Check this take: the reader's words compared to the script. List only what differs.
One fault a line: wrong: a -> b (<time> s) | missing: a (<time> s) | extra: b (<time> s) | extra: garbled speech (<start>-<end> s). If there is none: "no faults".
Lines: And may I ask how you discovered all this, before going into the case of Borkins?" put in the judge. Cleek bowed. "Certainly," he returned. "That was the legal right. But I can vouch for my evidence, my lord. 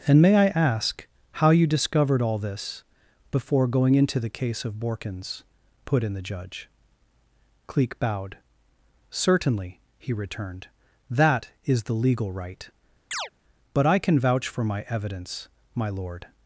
wrong: was -> is (11.7 s)